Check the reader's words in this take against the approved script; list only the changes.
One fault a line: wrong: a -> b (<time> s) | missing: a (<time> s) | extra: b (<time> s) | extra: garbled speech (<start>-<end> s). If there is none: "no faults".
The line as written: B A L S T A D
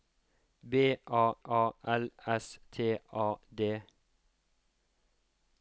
extra: A (1.4 s)